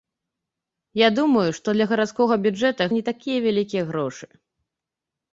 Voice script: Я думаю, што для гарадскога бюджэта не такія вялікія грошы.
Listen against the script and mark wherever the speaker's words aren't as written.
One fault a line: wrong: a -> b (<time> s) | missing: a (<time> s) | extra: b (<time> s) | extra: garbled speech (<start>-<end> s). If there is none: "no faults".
no faults